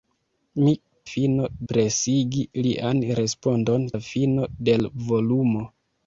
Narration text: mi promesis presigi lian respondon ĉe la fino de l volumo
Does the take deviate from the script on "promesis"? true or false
true